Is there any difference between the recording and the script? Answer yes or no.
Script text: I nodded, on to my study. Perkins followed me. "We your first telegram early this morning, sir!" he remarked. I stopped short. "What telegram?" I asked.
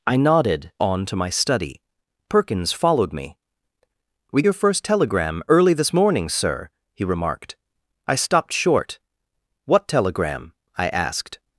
no